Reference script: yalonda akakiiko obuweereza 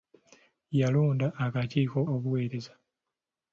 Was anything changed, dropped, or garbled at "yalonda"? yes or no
no